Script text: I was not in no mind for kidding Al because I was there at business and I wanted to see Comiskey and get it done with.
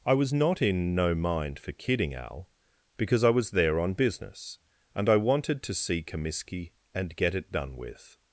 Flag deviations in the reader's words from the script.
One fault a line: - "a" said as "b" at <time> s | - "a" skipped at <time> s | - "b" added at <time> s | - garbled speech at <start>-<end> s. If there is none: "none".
- "at" said as "on" at 3.8 s